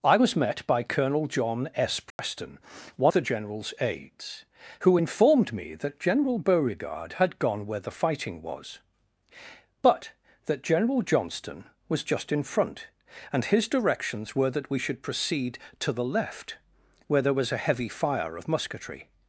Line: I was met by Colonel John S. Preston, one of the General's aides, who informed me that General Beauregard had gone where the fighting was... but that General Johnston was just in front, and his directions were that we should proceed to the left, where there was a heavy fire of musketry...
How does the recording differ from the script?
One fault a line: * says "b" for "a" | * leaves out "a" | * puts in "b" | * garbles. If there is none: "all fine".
* leaves out "of"